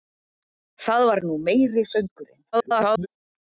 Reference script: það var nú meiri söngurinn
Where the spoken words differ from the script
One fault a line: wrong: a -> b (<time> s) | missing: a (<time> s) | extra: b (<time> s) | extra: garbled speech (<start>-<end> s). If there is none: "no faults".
extra: garbled speech (2.5-3.1 s)